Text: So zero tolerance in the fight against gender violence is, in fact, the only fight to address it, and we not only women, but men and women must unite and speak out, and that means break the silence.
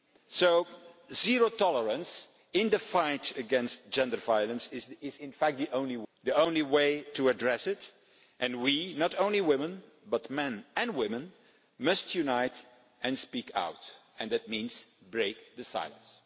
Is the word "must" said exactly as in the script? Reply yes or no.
yes